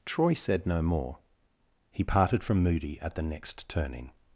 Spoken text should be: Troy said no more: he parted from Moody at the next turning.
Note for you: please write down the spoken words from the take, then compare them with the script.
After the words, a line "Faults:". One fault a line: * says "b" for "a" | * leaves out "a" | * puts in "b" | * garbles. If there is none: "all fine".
Troy said no more: he parted from Moody at the next turning.
Faults:
all fine